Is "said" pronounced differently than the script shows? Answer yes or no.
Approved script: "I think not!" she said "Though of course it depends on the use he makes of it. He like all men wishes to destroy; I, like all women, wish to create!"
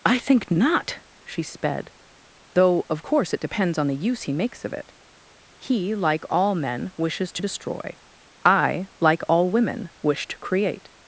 yes